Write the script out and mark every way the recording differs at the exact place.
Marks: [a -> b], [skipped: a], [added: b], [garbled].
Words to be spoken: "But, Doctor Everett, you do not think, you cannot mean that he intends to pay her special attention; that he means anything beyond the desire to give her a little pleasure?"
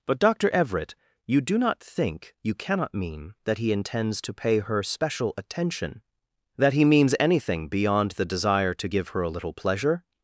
"But, Doctor Everett, you do not think, you cannot mean that he intends to pay her special attention; that he means anything beyond the desire to give her a little pleasure?"